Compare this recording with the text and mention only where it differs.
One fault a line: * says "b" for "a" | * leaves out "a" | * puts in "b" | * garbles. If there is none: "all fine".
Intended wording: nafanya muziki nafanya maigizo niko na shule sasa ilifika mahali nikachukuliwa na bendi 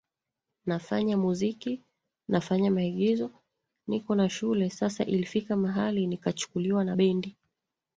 all fine